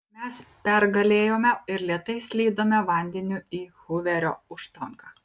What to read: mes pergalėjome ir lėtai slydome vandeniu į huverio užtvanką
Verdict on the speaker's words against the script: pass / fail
pass